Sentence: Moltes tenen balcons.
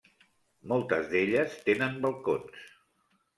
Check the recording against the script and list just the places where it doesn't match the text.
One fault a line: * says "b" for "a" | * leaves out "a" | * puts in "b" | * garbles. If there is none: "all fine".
* puts in "d'elles"